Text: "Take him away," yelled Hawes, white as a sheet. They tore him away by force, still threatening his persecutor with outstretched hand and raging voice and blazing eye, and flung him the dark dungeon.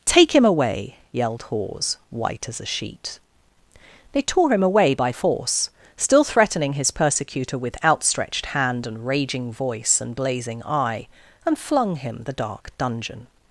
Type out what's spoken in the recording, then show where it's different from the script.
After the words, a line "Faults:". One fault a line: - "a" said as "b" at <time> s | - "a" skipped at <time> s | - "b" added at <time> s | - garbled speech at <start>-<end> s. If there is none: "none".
"Take him away," yelled Hawes, white as a sheet. They tore him away by force, still threatening his persecutor with outstretched hand and raging voice and blazing eye, and flung him the dark dungeon.
Faults:
none